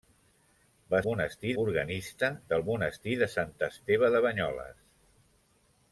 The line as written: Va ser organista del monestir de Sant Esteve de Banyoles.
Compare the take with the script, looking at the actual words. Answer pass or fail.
fail